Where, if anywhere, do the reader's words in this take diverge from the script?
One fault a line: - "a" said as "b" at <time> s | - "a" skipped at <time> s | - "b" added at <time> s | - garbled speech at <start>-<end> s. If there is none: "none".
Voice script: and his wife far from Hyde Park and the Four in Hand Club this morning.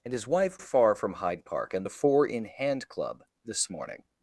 none